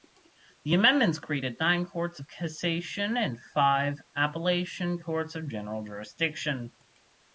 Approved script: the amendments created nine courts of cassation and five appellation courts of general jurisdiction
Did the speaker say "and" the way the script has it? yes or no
yes